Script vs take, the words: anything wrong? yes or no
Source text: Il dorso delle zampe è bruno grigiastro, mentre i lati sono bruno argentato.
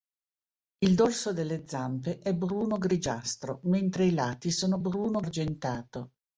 no